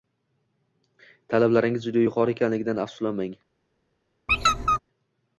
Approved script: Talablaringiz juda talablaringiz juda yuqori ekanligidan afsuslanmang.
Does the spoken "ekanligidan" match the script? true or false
true